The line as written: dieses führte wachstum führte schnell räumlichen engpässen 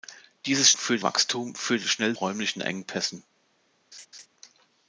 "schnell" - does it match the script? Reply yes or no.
yes